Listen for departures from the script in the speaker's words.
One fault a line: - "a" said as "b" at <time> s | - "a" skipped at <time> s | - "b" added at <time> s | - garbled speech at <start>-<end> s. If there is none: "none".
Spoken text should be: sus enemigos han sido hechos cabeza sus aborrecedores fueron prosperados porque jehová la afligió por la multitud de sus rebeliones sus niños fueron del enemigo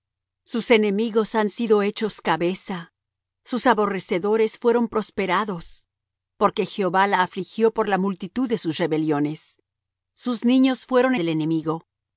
none